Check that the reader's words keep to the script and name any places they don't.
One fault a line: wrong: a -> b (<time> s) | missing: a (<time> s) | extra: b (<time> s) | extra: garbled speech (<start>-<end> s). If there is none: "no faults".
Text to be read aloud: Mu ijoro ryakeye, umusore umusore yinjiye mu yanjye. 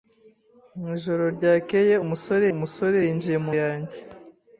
no faults